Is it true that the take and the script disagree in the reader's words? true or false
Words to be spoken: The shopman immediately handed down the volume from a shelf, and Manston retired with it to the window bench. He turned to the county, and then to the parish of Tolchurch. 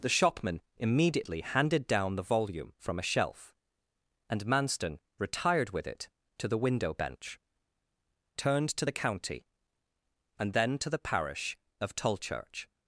true